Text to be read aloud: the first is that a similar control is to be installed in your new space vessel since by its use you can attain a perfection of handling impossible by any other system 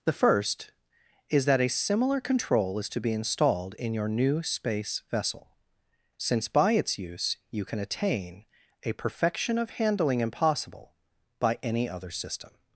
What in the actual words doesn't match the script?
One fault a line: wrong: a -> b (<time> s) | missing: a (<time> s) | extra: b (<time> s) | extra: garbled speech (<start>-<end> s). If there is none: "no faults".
no faults